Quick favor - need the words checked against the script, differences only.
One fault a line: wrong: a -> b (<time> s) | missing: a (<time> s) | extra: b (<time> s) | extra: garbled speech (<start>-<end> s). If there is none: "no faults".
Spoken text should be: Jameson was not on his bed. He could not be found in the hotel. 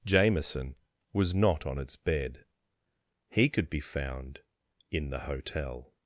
wrong: his -> its (1.8 s)
missing: not (3.7 s)